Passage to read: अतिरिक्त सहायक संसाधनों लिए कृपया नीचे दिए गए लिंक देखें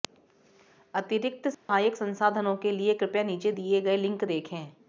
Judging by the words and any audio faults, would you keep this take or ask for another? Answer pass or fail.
fail